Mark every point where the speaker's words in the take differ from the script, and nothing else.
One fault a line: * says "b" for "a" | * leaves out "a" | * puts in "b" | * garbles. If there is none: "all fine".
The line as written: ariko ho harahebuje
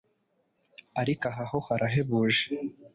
* puts in "aha"